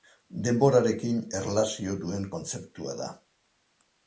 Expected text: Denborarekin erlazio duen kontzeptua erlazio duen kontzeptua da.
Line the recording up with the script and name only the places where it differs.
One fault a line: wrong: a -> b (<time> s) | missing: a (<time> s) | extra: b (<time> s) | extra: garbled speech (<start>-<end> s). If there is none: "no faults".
missing: erlazio duen kontzeptua (3.0 s)